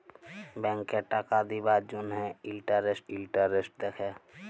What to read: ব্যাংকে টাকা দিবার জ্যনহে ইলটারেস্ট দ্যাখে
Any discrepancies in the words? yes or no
yes